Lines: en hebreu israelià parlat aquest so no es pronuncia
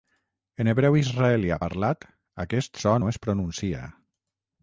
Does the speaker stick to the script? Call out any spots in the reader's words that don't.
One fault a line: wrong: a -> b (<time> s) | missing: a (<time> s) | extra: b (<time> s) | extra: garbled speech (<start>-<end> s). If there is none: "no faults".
no faults